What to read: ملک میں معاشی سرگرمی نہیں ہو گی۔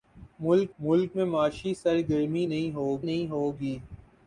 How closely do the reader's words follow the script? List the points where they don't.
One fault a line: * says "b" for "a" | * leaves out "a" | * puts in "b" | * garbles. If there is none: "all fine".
* puts in "ملک"
* puts in "نہیں ہو"